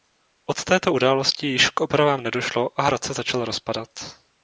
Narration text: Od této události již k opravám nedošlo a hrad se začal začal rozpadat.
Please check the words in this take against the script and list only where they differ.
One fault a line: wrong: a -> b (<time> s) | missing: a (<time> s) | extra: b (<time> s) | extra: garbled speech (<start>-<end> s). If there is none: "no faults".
missing: začal (3.4 s)